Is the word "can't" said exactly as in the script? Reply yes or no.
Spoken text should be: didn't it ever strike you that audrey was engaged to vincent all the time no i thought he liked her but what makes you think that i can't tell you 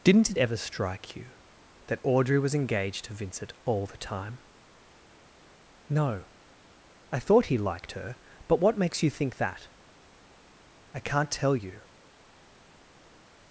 yes